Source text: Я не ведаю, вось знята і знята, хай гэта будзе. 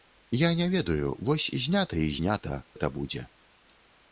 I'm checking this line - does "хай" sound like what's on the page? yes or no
no